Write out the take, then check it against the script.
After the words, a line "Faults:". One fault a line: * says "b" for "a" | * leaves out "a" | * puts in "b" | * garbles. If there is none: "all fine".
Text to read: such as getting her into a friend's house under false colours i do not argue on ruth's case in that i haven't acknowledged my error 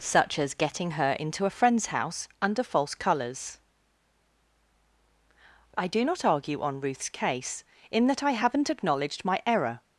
such as getting her into a friend's house under false colours i do not argue on ruth's case in that i haven't acknowledged my error
Faults:
all fine